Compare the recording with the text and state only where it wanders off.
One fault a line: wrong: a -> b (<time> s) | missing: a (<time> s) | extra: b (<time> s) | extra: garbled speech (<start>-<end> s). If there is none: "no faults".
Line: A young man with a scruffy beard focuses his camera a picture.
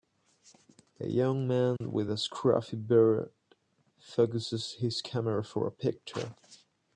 extra: for (5.4 s)